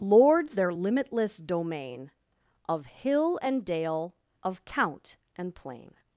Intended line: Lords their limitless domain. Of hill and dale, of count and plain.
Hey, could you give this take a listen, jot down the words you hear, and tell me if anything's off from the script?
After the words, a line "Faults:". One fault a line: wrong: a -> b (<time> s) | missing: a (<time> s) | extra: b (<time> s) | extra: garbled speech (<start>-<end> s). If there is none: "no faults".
Lords their limitless domain. Of hill and dale, of count and plain.
Faults:
no faults